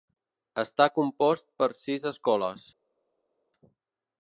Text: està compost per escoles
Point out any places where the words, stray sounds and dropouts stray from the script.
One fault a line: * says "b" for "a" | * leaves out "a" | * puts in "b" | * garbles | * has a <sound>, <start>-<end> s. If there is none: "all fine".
* puts in "sis"